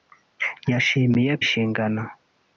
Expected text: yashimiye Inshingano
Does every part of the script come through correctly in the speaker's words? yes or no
yes